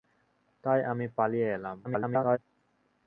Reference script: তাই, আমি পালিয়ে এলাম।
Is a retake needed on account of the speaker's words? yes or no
yes